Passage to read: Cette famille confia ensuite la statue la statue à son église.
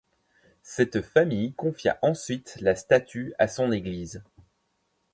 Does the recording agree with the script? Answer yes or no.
no